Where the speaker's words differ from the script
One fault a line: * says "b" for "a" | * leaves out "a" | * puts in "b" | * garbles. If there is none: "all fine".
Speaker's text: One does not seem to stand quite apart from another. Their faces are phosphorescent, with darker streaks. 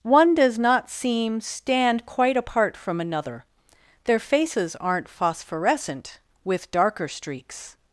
* leaves out "to"
* says "aren't" for "are"